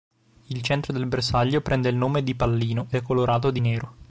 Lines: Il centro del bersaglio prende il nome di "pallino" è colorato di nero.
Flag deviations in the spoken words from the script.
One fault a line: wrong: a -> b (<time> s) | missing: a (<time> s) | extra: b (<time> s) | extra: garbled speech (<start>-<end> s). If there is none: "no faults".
no faults